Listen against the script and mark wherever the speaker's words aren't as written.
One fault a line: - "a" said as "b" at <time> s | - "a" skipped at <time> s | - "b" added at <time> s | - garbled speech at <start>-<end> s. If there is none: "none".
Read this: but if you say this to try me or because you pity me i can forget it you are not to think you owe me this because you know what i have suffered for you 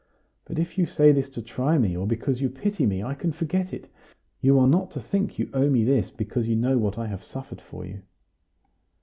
none